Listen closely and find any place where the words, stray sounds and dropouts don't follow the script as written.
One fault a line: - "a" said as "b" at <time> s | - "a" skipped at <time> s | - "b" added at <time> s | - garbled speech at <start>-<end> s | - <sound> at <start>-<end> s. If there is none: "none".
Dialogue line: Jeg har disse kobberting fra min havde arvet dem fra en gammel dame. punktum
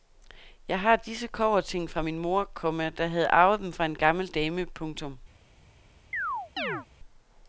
- "mor komma der" added at 2.2 s
- chirp at 6.1-6.9 s